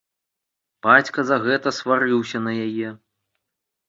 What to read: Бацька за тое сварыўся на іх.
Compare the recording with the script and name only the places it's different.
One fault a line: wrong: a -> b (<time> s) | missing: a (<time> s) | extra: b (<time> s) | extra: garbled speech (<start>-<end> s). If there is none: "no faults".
wrong: тое -> гэта (1.4 s)
wrong: іх -> яе (2.6 s)